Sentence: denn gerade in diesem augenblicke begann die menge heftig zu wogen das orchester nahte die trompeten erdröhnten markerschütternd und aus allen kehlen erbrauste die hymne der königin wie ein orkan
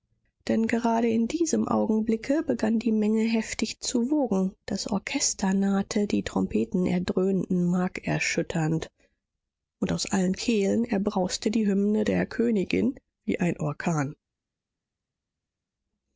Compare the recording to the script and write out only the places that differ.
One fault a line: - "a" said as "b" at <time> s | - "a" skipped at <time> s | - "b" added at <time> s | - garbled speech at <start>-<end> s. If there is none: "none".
none